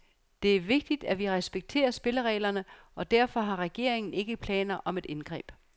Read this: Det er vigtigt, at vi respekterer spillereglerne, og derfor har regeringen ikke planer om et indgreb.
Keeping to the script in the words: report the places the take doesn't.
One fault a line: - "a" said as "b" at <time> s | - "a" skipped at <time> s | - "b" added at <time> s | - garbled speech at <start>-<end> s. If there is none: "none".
none